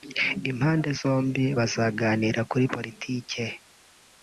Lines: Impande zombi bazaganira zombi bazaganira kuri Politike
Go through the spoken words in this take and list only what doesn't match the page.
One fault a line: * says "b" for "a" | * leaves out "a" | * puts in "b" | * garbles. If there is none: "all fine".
* leaves out "zombi bazaganira"